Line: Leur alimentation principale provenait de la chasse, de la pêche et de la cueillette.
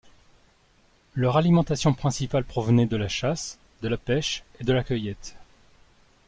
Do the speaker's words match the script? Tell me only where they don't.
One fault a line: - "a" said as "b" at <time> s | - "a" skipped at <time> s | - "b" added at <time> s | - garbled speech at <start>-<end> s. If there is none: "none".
none